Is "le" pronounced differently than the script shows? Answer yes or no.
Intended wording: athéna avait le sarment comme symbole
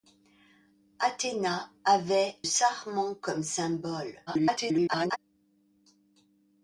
yes